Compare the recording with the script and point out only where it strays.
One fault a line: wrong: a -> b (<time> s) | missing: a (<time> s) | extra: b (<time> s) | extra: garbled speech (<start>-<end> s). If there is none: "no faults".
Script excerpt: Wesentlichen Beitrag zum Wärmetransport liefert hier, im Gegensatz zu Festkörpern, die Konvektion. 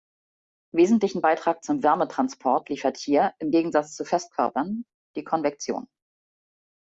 no faults